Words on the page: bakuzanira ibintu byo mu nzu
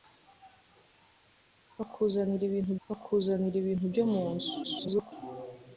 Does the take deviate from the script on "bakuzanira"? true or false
false